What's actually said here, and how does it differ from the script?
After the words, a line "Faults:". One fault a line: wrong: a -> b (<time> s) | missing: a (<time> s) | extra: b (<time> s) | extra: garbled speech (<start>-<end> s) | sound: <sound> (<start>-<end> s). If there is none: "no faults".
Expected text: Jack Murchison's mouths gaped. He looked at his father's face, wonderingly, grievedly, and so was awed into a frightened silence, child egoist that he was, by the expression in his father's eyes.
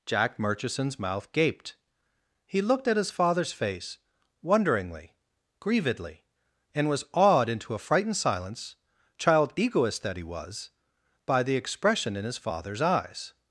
Jack Murchison's mouth gaped. He looked at his father's face, wonderingly, grievedly, and was awed into a frightened silence, child egoist that he was, by the expression in his father's eyes.
Faults:
wrong: mouths -> mouth (1.0 s)
missing: so (6.9 s)